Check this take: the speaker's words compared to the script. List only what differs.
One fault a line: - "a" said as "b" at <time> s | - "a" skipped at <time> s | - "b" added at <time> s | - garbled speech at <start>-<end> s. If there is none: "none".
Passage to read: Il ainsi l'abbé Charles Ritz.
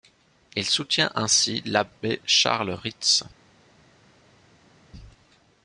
- "soutient" added at 0.7 s